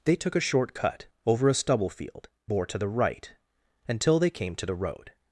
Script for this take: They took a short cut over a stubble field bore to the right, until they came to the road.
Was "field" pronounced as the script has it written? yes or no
yes